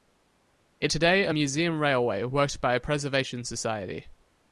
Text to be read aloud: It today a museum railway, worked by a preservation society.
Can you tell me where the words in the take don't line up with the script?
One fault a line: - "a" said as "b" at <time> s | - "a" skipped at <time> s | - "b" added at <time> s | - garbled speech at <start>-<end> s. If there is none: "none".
none